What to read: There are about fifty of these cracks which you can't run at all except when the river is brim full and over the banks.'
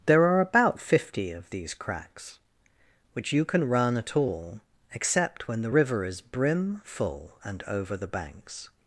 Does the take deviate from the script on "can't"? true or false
true